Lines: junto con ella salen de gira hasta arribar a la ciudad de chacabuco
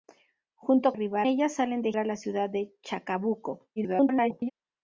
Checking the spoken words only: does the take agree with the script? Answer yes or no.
no